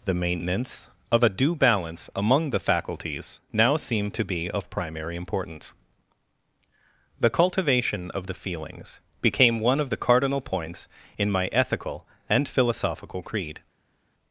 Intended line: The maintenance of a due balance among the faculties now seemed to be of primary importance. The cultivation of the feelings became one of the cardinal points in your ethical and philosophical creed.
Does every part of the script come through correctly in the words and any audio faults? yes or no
no